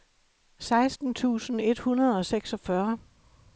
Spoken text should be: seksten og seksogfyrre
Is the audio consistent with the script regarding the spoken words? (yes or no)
no